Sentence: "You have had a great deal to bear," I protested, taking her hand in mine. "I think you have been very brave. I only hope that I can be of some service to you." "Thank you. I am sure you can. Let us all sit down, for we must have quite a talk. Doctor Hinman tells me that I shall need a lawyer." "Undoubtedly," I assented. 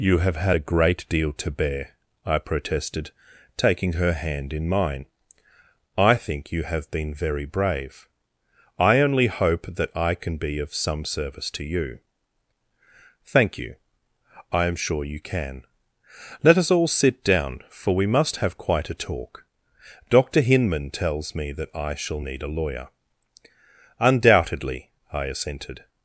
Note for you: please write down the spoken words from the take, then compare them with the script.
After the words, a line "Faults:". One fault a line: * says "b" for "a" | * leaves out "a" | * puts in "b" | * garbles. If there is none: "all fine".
"You have had a great deal to bear," I protested, taking her hand in mine. "I think you have been very brave. I only hope that I can be of some service to you." "Thank you. I am sure you can. Let us all sit down, for we must have quite a talk. Doctor Hinman tells me that I shall need a lawyer." "Undoubtedly," I assented.
Faults:
all fine